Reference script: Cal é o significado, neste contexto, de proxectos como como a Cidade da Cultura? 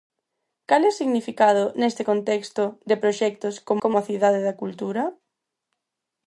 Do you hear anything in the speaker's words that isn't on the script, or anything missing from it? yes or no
no